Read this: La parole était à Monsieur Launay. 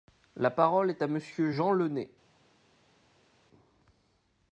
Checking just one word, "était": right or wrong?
wrong